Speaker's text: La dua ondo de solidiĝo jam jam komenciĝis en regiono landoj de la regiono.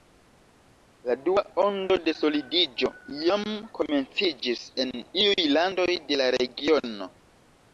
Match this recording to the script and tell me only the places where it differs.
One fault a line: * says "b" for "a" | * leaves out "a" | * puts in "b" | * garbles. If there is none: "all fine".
* leaves out "jam"
* says "iuj" for "regiono"